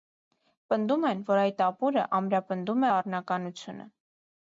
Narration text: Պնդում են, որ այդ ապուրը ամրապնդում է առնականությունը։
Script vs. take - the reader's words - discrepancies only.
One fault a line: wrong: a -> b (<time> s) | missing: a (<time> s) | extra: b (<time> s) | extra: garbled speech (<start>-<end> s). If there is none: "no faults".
no faults